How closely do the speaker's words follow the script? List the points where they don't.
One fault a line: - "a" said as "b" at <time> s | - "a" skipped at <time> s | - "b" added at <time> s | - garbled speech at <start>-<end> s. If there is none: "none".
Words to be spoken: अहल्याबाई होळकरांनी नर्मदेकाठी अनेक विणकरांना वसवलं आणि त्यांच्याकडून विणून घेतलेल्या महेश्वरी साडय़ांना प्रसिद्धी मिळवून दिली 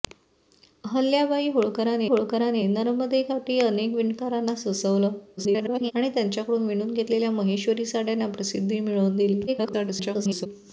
- "होळकरांनी" added at 2.0 s
- garbled speech at 5.4-5.9 s
- garbled speech at 9.5-10.5 s